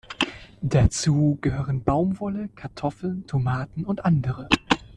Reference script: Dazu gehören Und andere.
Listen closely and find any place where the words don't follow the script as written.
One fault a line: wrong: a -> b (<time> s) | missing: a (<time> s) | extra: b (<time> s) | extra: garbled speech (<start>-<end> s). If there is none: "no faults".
extra: Baumwolle Kartoffeln Tomaten (1.8 s)